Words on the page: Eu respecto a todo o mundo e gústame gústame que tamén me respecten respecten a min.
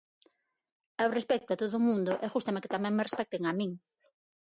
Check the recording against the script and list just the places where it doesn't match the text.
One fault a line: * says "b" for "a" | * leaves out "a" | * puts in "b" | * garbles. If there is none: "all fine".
* leaves out "gústame"
* leaves out "respecten"